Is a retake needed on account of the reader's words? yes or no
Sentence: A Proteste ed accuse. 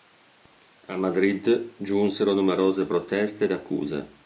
yes